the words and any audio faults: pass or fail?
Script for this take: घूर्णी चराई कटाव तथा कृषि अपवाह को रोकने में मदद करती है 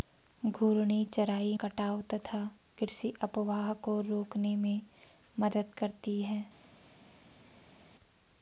pass